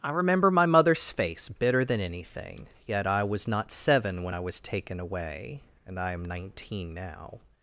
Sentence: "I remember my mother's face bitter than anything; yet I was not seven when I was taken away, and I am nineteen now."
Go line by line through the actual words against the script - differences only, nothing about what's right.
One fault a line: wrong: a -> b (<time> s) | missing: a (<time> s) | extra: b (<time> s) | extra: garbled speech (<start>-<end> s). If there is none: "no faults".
no faults